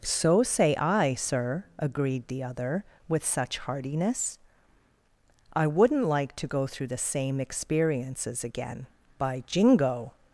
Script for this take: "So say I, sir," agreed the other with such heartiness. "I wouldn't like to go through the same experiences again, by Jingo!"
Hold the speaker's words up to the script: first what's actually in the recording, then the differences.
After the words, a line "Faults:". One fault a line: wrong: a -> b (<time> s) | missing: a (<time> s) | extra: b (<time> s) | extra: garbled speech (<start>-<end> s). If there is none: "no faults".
"So say I, sir," agreed the other with such heartiness. "I wouldn't like to go through the same experiences again, by Jingo!"
Faults:
no faults